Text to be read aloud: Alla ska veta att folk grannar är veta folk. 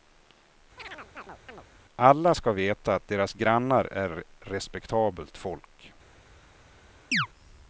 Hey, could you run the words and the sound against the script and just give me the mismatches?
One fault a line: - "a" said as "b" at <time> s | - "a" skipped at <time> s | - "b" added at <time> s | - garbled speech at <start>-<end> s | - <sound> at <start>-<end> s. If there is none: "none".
- chirp at 0.8-1.6 s
- "folk" said as "deras" at 3.1 s
- "veta" said as "respektabelt" at 4.4 s
- chirp at 7.1-7.3 s